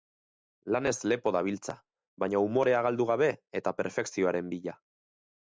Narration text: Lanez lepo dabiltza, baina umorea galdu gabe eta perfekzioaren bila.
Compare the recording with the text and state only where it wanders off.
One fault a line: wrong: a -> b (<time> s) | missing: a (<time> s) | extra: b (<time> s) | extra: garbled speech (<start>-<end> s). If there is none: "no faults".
no faults